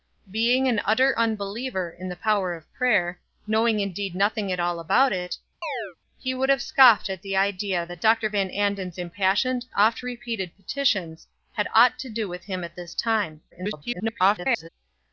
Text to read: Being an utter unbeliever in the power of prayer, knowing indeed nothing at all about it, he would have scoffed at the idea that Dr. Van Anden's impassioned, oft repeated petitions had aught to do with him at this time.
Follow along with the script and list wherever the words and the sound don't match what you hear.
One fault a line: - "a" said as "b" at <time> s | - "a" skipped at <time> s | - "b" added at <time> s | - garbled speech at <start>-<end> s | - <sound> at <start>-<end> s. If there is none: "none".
- chirp at 5.6-6.0 s
- garbled speech at 13.5-14.7 s